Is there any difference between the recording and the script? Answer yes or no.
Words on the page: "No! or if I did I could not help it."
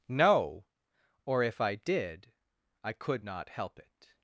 no